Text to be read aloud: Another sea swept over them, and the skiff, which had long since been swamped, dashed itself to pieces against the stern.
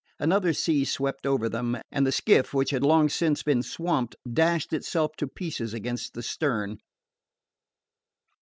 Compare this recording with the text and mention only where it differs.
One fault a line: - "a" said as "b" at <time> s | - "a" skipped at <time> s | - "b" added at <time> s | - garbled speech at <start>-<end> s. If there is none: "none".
none